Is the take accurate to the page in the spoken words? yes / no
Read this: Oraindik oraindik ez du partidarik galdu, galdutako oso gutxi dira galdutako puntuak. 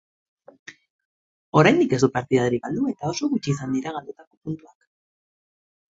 no